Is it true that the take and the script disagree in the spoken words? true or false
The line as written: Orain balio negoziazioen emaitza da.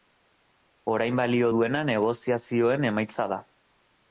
true